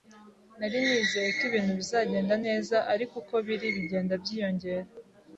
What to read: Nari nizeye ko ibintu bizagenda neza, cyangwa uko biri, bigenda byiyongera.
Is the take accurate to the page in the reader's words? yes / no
no